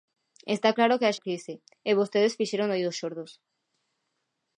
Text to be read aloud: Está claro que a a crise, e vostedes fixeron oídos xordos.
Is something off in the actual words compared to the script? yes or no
no